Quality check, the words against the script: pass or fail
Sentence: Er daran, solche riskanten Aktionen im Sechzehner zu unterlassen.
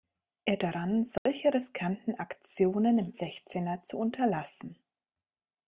pass